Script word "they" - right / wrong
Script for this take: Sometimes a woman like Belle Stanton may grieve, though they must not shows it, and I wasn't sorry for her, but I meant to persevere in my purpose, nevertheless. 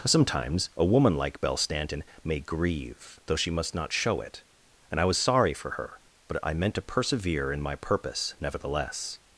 wrong